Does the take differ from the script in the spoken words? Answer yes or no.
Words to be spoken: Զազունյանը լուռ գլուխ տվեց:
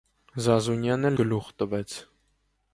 yes